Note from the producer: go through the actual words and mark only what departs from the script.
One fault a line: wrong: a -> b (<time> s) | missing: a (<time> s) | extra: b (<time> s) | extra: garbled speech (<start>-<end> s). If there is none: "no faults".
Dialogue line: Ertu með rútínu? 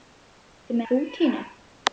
no faults